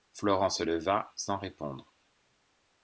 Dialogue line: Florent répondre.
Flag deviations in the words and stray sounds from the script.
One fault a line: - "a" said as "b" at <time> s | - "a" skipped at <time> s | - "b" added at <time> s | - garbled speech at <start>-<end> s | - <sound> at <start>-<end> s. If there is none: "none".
- "se leva sans" added at 0.5 s